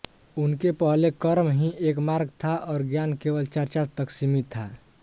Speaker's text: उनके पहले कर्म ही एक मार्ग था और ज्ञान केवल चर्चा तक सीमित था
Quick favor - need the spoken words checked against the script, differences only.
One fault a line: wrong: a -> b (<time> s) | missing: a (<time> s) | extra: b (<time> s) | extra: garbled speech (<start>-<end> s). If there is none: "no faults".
no faults